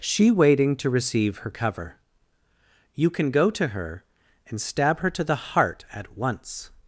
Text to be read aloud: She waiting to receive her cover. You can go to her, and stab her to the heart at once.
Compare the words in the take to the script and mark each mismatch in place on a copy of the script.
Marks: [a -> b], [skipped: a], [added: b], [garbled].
She waiting to receive her cover. You can go to her, and stab her to the heart at once.